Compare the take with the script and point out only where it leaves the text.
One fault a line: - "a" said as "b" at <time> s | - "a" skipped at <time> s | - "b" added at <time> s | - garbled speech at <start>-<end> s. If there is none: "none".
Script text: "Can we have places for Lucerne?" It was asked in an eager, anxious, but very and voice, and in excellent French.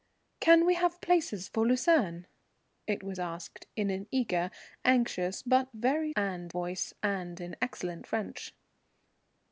none